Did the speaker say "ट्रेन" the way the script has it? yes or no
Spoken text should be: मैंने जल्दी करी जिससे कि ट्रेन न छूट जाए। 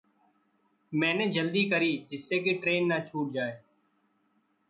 yes